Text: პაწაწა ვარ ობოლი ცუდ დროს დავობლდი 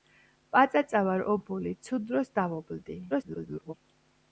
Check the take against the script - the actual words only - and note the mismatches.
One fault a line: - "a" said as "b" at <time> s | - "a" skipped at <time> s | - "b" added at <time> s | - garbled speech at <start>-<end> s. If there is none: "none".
- garbled speech at 3.1-3.7 s